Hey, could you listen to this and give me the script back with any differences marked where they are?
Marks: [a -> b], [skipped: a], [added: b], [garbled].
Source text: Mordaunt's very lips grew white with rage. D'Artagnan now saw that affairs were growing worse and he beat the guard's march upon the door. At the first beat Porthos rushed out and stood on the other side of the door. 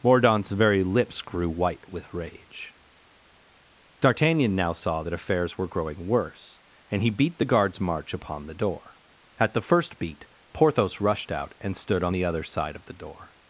Mordaunt's very lips grew white with rage. D'Artagnan now saw that affairs were growing worse and he beat the guard's march upon the door. At the first beat Porthos rushed out and stood on the other side of the door.